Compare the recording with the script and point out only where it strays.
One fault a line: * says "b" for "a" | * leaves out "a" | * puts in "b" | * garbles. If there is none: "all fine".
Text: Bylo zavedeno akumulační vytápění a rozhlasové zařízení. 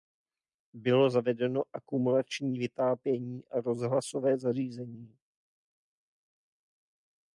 all fine